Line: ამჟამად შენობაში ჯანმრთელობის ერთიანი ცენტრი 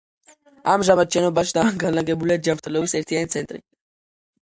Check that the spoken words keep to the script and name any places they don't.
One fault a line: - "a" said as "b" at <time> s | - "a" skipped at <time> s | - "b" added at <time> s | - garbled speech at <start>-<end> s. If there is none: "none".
- "განლაგებულია" added at 1.8 s